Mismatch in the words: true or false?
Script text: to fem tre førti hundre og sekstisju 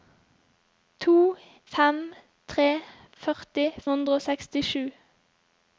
false